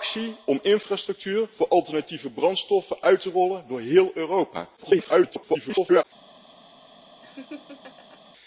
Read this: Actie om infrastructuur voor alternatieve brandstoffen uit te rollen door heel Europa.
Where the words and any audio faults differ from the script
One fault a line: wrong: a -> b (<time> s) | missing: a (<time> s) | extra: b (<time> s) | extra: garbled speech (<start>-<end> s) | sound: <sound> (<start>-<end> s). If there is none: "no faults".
extra: garbled speech (4.8-6.0 s)
sound: laugh (7.2-8.2 s)